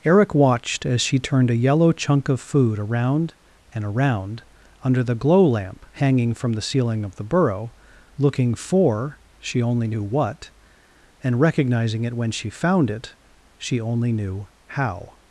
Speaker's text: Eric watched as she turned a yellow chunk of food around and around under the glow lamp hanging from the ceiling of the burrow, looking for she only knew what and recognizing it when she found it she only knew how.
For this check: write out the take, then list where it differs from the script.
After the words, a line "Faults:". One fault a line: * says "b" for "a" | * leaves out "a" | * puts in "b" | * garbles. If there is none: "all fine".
Eric watched as she turned a yellow chunk of food around and around under the glow lamp hanging from the ceiling of the burrow, looking for she only knew what and recognizing it when she found it she only knew how.
Faults:
all fine